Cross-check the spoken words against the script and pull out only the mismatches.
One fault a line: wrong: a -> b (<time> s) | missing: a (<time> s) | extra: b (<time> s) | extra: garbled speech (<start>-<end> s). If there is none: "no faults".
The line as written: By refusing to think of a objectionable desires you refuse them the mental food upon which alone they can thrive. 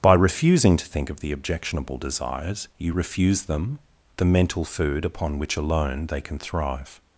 wrong: a -> the (1.2 s)